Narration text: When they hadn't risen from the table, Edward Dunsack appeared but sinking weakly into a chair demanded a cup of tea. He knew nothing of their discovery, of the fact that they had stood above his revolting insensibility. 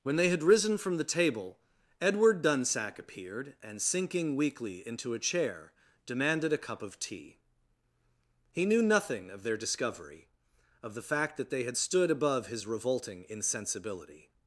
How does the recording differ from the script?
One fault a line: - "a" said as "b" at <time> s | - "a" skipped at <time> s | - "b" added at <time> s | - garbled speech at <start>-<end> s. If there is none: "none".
- "hadn't" said as "had" at 0.3 s
- "but" said as "and" at 3.6 s